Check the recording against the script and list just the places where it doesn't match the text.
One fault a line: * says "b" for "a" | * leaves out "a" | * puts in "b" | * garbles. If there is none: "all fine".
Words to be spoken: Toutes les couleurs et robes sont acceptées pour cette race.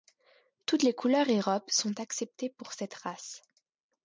all fine